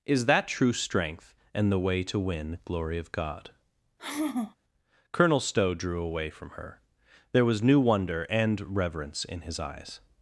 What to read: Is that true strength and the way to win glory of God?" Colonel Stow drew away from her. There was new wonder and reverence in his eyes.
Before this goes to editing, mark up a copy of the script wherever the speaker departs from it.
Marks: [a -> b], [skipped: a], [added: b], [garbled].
Is that true strength and the way to win glory of God?" Colonel Stow drew away from her. There was new wonder and reverence in his eyes.